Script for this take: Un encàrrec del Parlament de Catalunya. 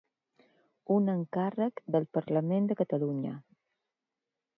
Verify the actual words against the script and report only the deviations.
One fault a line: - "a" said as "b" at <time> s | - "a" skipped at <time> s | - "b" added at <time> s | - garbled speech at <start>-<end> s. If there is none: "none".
none